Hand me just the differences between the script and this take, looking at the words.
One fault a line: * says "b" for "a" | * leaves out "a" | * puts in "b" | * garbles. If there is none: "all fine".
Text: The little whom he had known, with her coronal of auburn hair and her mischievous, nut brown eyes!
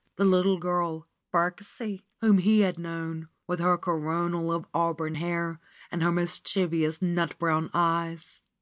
* puts in "girl Birksie"